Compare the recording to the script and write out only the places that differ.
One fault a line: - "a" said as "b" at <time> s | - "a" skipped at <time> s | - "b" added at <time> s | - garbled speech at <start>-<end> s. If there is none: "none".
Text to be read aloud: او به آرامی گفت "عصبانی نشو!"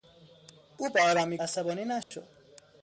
- "گفت" skipped at 1.4 s